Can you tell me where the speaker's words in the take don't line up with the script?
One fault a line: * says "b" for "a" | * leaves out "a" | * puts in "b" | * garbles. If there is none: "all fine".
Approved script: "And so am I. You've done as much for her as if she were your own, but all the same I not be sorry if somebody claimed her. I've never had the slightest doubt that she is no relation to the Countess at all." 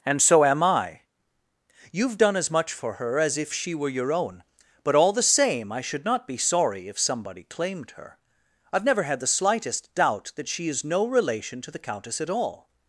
* puts in "should"